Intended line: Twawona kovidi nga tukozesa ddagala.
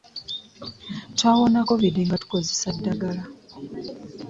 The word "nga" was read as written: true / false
true